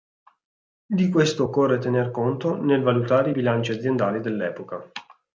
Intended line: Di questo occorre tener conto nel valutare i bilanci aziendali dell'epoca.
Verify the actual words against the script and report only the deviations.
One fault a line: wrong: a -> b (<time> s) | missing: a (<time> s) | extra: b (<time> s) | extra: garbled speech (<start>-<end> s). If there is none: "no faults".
no faults